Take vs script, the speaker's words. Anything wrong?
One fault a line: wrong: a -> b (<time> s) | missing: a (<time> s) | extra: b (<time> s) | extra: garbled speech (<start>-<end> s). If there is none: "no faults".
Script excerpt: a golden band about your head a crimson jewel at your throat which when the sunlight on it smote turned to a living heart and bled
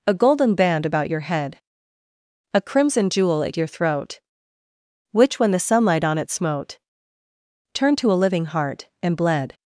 no faults